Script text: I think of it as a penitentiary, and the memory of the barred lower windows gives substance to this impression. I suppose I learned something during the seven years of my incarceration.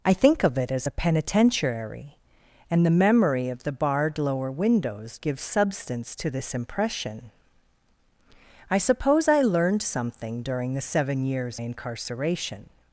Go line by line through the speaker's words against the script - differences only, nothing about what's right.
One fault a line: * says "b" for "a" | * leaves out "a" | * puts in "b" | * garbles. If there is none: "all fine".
* leaves out "of my"